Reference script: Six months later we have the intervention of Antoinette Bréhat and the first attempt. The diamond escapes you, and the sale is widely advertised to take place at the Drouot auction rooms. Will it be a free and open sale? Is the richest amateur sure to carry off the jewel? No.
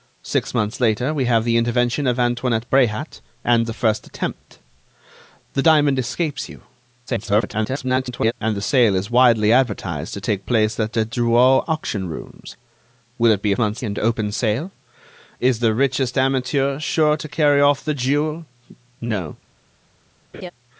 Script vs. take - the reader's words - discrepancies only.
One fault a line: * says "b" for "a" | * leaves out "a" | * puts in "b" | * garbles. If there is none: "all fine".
* garbles
* says "months" for "free"